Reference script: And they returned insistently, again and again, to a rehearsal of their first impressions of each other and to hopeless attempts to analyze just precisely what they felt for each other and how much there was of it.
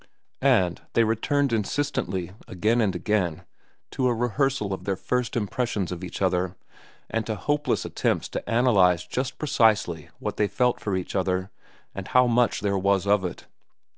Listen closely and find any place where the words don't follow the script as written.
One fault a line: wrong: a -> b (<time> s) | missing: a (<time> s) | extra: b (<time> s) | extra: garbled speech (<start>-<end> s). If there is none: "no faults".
no faults